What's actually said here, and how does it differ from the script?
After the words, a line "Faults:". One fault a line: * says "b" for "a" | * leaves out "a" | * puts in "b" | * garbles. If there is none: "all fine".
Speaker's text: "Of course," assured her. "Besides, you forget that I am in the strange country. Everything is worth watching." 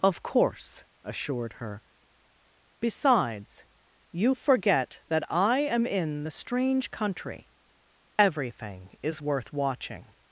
"Of course," assured her. "Besides, you forget that I am in the strange country. Everything is worth watching."
Faults:
all fine